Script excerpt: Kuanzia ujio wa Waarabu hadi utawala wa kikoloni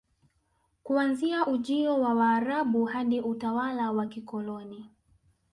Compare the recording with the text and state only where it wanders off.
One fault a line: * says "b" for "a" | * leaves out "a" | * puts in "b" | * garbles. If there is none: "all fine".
all fine